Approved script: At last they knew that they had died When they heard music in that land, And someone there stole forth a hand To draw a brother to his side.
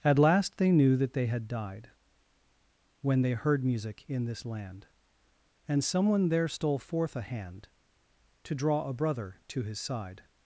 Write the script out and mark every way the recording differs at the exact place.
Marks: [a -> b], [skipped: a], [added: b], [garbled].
At last they knew that they had died When they heard music in [that -> this] land, And someone there stole forth a hand To draw a brother to his side.